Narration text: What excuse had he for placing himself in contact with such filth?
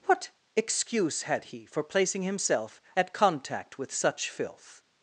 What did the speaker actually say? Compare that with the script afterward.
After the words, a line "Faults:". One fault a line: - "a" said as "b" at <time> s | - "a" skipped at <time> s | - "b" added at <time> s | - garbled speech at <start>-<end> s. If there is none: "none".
What excuse had he for placing himself at contact with such filth?
Faults:
- "in" said as "at" at 3.0 s